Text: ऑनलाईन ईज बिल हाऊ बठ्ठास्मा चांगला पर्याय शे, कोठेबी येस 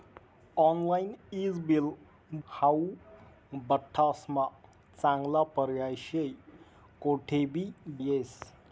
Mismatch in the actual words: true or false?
false